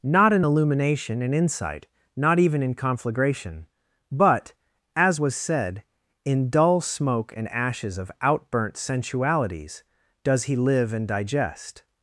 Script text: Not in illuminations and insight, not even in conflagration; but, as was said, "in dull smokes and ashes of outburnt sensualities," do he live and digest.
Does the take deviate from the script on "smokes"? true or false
true